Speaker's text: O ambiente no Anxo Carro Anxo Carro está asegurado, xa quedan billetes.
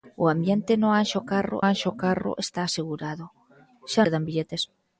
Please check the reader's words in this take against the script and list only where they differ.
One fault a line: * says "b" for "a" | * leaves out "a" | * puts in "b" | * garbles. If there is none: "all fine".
all fine